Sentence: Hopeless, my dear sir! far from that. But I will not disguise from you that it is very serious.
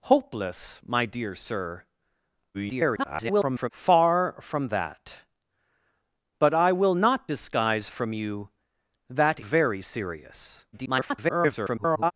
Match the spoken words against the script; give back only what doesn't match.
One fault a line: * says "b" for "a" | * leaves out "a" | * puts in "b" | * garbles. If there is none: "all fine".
* garbles
* leaves out "it is"
* garbles